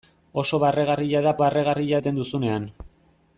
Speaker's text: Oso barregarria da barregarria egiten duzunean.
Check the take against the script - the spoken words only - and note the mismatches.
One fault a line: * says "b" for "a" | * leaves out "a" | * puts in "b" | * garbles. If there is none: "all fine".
all fine